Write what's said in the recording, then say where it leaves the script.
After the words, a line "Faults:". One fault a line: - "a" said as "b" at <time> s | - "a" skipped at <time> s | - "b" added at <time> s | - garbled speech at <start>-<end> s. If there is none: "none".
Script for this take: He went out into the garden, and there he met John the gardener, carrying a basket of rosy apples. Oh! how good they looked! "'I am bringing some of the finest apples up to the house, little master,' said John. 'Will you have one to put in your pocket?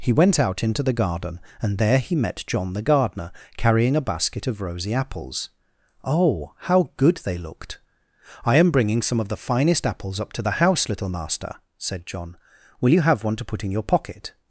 He went out into the garden, and there he met John the gardener, carrying a basket of rosy apples. Oh! how good they looked! "'I am bringing some of the finest apples up to the house, little master,' said John. 'Will you have one to put in your pocket?
Faults:
none